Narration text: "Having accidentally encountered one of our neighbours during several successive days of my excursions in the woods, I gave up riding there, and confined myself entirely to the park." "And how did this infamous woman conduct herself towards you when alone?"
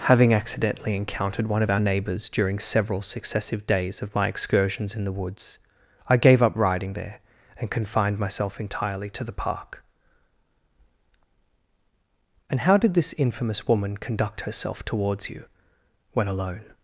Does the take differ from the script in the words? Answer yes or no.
no